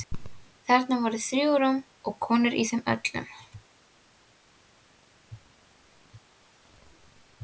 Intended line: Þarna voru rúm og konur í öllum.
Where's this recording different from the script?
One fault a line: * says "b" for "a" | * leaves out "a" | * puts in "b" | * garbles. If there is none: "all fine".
* puts in "þrjú"
* puts in "þeim"